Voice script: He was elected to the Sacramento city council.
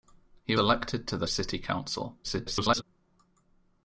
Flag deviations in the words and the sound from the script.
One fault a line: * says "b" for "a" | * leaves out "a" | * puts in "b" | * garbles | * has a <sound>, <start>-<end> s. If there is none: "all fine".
* leaves out "was"
* leaves out "Sacramento"
* garbles